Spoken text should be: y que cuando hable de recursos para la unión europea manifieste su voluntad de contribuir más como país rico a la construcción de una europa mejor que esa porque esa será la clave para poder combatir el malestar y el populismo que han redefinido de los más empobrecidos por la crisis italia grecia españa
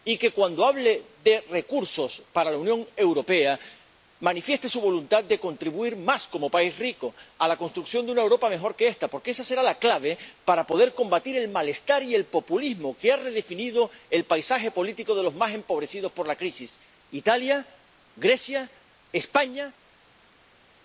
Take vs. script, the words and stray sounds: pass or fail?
fail